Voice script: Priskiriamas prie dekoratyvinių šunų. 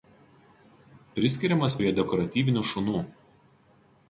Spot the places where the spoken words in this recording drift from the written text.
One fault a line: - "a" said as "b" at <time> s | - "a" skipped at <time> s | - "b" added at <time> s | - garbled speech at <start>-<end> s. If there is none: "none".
none